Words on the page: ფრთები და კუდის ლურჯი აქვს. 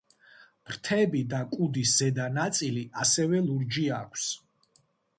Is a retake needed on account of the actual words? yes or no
yes